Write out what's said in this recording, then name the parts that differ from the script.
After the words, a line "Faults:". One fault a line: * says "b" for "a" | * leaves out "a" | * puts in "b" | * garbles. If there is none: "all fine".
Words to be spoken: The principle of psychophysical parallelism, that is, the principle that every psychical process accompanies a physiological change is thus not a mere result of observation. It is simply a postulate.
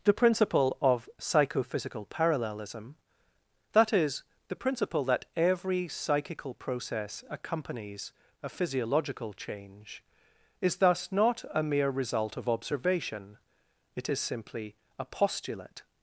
The principle of psychophysical parallelism, that is, the principle that every psychical process accompanies a physiological change is thus not a mere result of observation. It is simply a postulate.
Faults:
all fine